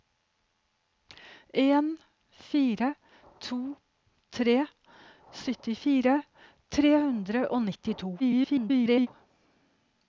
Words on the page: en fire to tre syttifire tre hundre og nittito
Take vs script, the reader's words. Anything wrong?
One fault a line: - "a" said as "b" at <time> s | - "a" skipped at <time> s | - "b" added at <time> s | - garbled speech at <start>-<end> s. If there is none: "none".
- garbled speech at 8.2-9.1 s